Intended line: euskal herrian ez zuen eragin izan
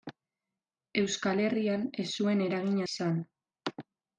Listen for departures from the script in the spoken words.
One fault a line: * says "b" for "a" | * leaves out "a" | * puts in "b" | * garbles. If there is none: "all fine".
all fine